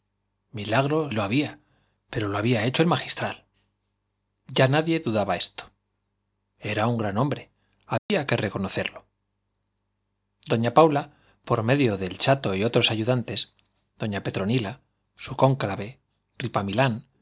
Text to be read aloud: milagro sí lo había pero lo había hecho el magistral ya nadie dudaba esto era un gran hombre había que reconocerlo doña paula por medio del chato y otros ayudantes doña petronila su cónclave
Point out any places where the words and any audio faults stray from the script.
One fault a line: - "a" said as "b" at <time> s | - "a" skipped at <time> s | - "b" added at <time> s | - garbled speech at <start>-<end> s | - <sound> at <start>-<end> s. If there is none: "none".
- "sí" skipped at 1.1 s
- dropout at 8.0-8.1 s